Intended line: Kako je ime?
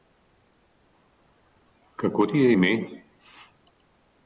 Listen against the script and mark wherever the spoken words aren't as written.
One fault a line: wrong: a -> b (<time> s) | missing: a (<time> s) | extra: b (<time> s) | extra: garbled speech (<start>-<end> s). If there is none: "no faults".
extra: ti (2.3 s)